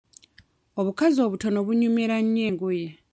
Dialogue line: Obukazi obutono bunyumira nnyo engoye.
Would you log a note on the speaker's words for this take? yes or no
no